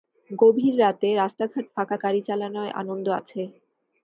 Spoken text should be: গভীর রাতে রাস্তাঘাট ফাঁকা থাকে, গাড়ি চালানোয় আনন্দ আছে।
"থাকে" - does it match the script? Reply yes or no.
no